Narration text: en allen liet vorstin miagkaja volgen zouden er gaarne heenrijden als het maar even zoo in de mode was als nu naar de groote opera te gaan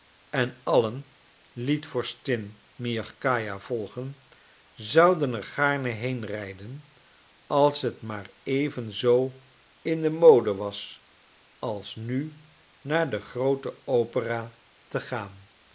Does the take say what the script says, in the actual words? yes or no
yes